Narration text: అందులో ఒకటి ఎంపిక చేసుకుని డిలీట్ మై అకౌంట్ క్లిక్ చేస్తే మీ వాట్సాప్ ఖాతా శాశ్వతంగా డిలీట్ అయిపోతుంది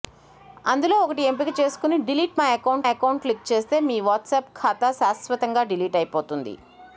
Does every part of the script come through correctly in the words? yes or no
no